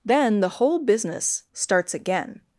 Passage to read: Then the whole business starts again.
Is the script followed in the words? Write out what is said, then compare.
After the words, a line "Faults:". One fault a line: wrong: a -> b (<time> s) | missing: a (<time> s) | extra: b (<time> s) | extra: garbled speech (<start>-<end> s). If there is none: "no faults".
Then the whole business starts again.
Faults:
no faults